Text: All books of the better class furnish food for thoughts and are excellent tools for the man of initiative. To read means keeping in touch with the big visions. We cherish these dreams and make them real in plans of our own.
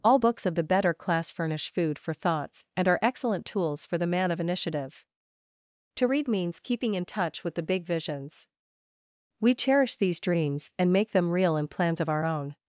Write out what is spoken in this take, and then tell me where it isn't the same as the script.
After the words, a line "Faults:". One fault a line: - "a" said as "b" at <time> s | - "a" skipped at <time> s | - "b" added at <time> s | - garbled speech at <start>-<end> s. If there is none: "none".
All books of the better class furnish food for thoughts and are excellent tools for the man of initiative. To read means keeping in touch with the big visions. We cherish these dreams and make them real in plans of our own.
Faults:
none